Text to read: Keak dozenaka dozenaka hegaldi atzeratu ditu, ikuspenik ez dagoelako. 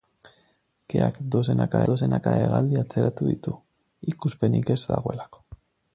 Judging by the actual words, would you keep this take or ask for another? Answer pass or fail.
pass